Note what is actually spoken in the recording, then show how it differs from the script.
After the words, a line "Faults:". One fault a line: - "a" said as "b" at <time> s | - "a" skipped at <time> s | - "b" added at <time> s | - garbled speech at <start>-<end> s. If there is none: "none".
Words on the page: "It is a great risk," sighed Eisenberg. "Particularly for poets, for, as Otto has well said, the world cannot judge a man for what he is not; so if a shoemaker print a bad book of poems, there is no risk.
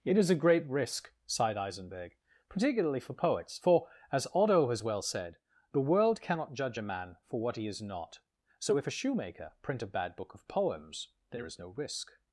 "It is a great risk," sighed Eisenberg. "Particularly for poets, for, as Otto has well said, the world cannot judge a man for what he is not; so if a shoemaker print a bad book of poems, there is no risk.
Faults:
none